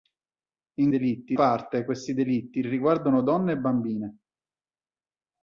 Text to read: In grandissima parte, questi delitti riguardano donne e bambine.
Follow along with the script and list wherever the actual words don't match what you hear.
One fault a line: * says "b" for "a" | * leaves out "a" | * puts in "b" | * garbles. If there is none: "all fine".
* says "delitti" for "grandissima"